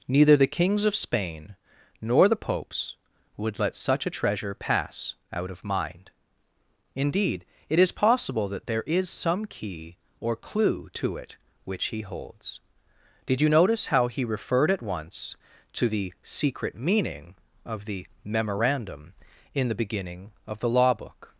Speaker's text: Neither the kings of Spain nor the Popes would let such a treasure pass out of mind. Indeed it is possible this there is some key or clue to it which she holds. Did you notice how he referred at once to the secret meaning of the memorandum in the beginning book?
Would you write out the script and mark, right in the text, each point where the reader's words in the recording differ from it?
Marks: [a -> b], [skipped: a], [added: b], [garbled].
Neither the kings of Spain nor the Popes would let such a treasure pass out of mind. Indeed it is possible [this -> that] there is some key or clue to it which [she -> he] holds. Did you notice how he referred at once to the secret meaning of the memorandum in the beginning [added: of the law] book?